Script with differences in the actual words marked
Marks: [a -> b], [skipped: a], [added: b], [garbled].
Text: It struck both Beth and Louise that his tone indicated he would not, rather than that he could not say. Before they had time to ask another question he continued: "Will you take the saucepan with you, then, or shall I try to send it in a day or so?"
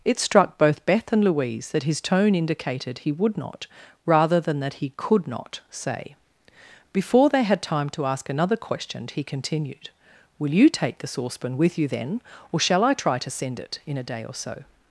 It struck both Beth and Louise that his tone indicated he would not, rather than that he could not say. Before they had time to ask another question he continued: "Will you take the saucepan with you, then, or shall I try to send it in a day or so?"